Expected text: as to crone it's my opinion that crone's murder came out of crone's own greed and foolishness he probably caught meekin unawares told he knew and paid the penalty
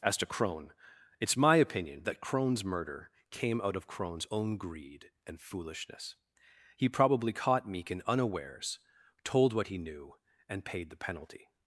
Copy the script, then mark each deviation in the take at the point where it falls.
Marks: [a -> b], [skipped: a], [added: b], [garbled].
as to crone it's my opinion that crone's murder came out of crone's own greed and foolishness he probably caught meekin unawares told [added: what] he knew and paid the penalty